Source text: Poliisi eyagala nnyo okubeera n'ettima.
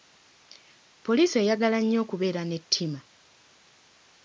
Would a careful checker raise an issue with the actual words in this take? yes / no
no